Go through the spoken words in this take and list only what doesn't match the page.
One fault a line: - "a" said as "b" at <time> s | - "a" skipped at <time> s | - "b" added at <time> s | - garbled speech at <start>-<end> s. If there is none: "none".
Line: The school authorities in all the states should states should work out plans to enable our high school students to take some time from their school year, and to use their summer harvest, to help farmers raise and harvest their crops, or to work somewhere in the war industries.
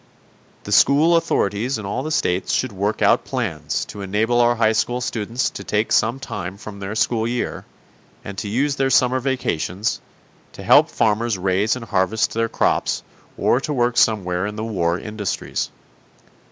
- "states should" skipped at 2.7 s
- "harvest" said as "vacations" at 9.2 s